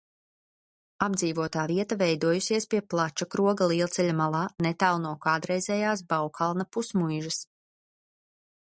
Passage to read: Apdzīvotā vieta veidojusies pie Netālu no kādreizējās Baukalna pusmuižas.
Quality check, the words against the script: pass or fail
fail